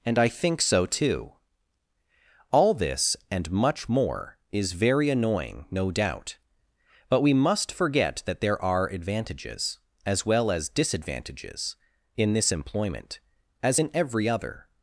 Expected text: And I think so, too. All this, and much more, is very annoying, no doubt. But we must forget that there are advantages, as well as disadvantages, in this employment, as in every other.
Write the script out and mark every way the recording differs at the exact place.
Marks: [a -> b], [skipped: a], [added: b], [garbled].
And I think so, too. All this, and much more, is very annoying, no doubt. But we must forget that there are advantages, as well as disadvantages, in this employment, as in every other.